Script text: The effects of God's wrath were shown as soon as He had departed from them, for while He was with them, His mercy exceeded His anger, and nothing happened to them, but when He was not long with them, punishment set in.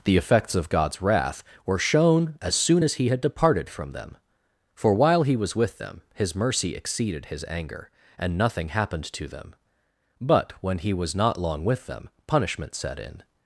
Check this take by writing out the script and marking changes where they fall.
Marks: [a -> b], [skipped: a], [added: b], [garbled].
The effects of God's wrath were shown as soon as He had departed from them, for while He was with them, His mercy exceeded His anger, and nothing happened to them, but when He was not long with them, punishment set in.